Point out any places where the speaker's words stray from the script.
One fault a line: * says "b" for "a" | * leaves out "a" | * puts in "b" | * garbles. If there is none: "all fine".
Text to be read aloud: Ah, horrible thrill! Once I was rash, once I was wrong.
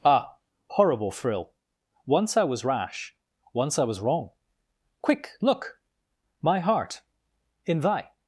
* puts in "Quick look My heart in thy"